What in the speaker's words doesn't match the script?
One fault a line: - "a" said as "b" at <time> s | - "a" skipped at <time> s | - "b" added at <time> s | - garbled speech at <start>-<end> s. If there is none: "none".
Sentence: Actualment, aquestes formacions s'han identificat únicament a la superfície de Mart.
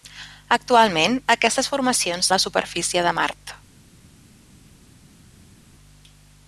- "s'han identificat únicament" skipped at 2.3 s